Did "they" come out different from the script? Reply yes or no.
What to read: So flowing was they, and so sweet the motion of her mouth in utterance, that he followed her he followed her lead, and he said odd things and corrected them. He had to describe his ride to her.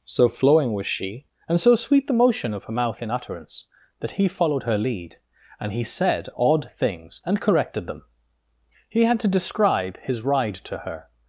yes